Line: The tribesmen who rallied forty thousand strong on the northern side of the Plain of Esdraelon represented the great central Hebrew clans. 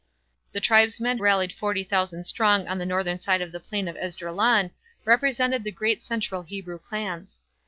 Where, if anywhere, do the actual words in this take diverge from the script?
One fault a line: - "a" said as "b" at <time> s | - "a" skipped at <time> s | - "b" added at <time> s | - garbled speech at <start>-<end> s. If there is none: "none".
- "who" skipped at 1.2 s